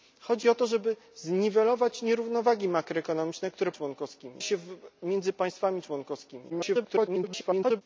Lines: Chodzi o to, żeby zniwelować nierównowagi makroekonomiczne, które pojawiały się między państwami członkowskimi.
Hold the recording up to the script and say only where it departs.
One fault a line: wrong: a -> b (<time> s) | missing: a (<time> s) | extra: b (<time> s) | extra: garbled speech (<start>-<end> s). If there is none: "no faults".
wrong: pojawiały -> członkowskimi (3.7 s)
extra: garbled speech (6.5-7.8 s)